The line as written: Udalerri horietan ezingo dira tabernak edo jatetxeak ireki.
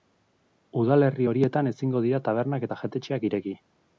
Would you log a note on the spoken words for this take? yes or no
yes